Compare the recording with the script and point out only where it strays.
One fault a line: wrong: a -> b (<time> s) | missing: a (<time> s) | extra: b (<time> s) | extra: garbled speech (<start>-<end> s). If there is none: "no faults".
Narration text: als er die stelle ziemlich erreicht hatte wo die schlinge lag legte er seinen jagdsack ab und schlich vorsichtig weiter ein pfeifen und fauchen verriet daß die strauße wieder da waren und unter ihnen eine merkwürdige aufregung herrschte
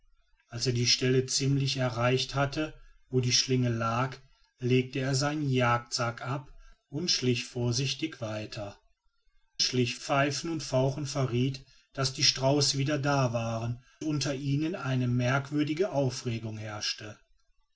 wrong: ein -> schlich (9.6 s)
missing: und (13.8 s)